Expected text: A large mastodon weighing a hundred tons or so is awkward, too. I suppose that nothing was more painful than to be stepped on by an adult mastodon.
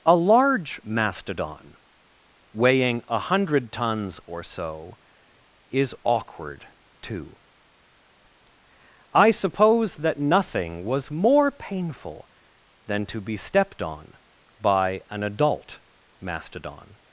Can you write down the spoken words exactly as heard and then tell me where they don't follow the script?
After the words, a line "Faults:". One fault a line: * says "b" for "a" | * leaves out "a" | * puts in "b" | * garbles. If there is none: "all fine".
A large mastodon weighing a hundred tons or so is awkward, too. I suppose that nothing was more painful than to be stepped on by an adult mastodon.
Faults:
all fine